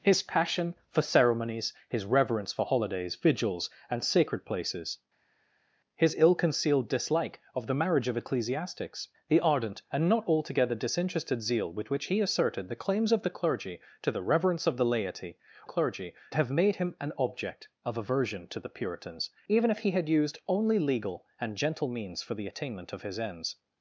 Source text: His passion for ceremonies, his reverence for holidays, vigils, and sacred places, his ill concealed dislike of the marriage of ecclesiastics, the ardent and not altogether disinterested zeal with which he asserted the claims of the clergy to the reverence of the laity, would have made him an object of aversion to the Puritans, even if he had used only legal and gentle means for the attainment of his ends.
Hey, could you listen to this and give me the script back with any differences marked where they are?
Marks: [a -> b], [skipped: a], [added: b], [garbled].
His passion for ceremonies, his reverence for holidays, vigils, and sacred places, his ill concealed dislike of the marriage of ecclesiastics, the ardent and not altogether disinterested zeal with which he asserted the claims of the clergy to the reverence of the laity, [would -> clergy] have made him an object of aversion to the Puritans, even if he had used only legal and gentle means for the attainment of his ends.